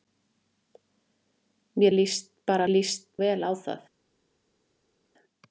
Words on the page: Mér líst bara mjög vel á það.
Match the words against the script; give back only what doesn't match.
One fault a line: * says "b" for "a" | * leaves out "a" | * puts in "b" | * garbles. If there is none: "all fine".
* says "líst" for "mjög"